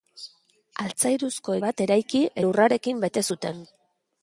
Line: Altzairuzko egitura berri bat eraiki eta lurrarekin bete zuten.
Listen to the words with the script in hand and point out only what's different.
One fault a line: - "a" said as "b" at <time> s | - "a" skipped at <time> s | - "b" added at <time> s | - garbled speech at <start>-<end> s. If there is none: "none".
- "egitura berri" skipped at 1.6 s
- "eta" skipped at 2.3 s